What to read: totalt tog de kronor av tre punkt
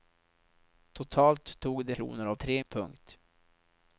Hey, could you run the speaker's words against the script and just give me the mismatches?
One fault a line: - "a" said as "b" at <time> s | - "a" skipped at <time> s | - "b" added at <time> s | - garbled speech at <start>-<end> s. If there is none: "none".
none